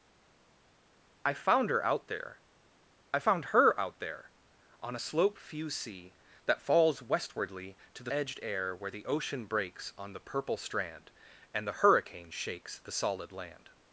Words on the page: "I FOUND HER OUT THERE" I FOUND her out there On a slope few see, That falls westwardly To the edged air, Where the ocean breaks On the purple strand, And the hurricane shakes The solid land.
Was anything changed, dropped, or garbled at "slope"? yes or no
no